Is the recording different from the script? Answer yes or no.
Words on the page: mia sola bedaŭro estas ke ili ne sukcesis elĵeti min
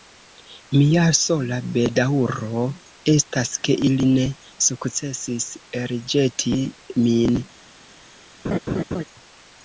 no